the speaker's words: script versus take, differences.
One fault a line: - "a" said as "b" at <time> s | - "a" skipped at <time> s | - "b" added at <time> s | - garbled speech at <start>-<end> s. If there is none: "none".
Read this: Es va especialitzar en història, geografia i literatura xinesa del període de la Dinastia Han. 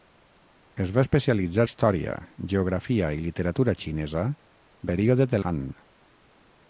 - "en" skipped at 1.6 s
- "del" skipped at 4.3 s
- "la Dinastia" skipped at 5.4 s